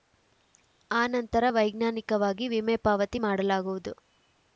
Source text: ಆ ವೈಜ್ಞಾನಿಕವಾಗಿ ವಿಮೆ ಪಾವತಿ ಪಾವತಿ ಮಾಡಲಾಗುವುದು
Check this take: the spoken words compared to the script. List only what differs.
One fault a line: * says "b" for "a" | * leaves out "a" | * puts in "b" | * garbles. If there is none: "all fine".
* puts in "ನಂತರ"
* leaves out "ಪಾವತಿ"